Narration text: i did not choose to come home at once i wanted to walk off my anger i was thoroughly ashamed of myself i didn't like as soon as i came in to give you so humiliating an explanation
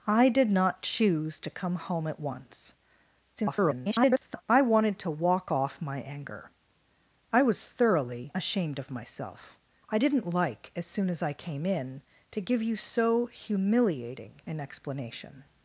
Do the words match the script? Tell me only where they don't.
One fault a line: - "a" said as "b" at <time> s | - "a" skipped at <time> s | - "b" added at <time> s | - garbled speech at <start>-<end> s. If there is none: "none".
- garbled speech at 3.4-4.4 s